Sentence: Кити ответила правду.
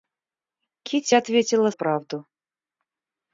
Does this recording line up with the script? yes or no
yes